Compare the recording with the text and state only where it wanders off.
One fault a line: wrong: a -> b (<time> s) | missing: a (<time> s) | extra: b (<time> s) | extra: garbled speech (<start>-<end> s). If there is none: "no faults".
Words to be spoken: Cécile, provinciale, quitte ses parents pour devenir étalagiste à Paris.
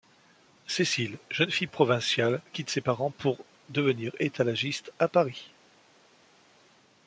extra: jeune fille (1.3 s)